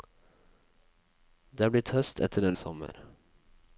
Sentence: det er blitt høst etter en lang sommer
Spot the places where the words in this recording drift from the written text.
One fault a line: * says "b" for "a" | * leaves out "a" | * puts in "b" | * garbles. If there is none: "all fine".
* leaves out "lang"